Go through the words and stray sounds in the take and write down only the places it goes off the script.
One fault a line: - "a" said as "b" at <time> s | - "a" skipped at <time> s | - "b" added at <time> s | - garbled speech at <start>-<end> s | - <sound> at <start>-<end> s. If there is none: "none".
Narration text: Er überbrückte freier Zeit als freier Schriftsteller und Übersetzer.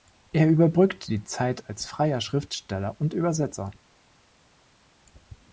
- "freier" said as "die" at 1.1 s